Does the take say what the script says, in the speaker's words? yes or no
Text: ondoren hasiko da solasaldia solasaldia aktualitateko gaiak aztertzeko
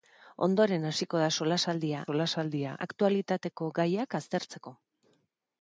yes